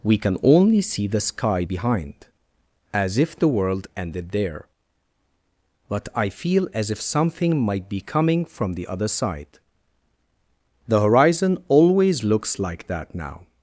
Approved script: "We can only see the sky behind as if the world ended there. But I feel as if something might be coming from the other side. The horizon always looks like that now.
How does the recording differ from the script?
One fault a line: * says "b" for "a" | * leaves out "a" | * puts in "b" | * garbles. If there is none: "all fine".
all fine